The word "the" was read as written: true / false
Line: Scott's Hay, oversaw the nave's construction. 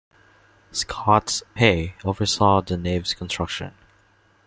true